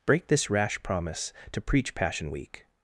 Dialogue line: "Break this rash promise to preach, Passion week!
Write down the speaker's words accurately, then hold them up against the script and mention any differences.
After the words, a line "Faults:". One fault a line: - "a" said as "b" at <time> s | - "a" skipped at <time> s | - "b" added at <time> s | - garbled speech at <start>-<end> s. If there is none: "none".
"Break this rash promise to preach, Passion week!
Faults:
none